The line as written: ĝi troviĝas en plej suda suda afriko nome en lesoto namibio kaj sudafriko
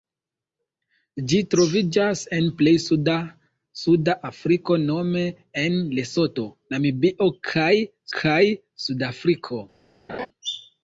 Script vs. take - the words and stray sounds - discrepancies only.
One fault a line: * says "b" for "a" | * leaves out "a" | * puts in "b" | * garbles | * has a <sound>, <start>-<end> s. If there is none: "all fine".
* puts in "kaj"
* has a laugh, 10.1-10.3 s